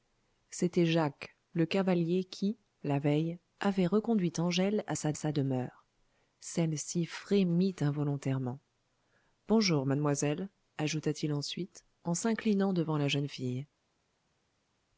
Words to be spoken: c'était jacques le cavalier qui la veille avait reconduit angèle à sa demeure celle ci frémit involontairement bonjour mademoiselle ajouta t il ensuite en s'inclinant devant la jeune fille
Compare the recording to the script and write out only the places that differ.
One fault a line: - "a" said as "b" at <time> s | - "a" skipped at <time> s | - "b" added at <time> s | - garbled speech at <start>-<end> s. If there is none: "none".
- "sa" added at 5.1 s